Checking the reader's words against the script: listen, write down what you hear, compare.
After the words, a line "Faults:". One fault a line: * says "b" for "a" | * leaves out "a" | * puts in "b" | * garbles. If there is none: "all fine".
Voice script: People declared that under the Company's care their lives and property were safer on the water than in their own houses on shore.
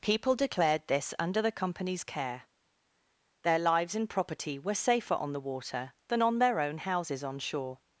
People declared this under the Company's care their lives and property were safer on the water than on their own houses on shore.
Faults:
* says "this" for "that"
* says "on" for "in"